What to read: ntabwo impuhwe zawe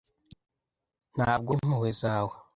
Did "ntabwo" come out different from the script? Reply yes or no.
no